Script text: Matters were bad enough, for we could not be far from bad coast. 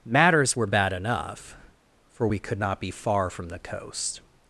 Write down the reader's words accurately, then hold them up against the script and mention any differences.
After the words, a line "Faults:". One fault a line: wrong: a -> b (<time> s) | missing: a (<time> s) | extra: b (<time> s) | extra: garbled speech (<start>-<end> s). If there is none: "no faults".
Matters were bad enough, for we could not be far from the coast.
Faults:
wrong: bad -> the (3.5 s)